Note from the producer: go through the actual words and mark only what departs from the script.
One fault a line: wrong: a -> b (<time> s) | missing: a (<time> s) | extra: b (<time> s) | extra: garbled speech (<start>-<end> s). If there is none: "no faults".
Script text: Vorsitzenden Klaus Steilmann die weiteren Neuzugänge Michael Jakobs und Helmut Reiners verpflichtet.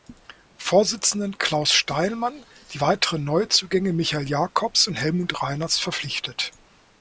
no faults